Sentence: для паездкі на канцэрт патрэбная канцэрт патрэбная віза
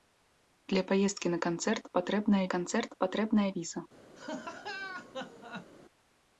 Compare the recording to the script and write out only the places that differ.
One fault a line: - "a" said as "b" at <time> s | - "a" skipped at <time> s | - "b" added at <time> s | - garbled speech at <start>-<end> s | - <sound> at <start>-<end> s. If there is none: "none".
- laugh at 4.2-5.7 s